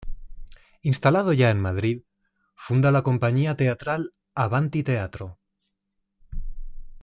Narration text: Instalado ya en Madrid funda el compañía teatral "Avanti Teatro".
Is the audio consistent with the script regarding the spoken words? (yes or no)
no